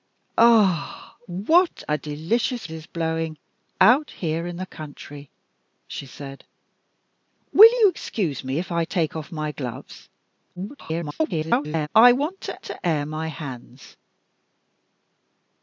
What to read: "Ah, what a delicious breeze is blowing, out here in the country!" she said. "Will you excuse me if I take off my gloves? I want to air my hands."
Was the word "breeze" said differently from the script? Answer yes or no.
yes